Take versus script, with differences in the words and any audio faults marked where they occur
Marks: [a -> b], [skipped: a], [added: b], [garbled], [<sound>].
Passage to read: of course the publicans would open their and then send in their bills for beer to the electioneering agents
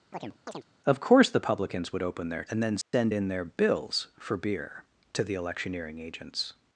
[chirp] of course the publicans would open their and then send [dropout] in their bills for beer to the electioneering agents